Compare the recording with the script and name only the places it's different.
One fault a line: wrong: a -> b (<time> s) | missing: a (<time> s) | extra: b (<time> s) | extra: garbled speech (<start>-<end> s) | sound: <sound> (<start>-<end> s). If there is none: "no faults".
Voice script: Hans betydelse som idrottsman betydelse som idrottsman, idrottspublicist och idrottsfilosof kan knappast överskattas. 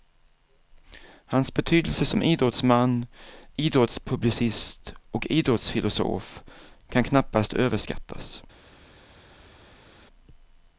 missing: betydelse som idrottsman (3.0 s)